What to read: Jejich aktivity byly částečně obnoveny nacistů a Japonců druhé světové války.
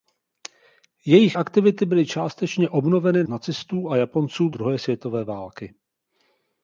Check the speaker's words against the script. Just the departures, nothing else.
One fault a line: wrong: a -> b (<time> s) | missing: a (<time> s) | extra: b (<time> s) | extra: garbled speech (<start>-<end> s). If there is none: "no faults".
no faults